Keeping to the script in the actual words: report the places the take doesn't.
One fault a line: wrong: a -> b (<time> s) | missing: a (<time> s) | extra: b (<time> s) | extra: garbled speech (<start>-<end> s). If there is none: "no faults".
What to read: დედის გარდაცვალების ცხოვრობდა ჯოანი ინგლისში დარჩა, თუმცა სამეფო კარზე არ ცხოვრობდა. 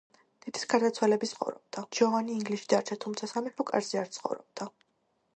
no faults